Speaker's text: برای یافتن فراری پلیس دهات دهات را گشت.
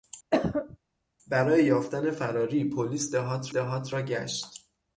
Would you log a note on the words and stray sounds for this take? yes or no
yes